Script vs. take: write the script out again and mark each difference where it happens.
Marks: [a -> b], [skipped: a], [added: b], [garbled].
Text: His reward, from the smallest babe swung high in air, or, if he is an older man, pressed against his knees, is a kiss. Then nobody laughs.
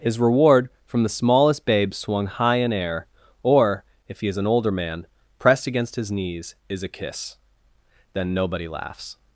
His reward, from the smallest babe swung high in air, or, if he is an older man, pressed against his knees, is a kiss. Then nobody laughs.